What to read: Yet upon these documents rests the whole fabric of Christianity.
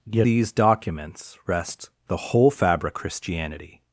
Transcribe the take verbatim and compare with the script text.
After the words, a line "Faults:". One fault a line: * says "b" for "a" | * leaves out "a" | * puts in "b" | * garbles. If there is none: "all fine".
Yet these documents rests the whole fabric Christianity.
Faults:
* leaves out "upon"
* leaves out "of"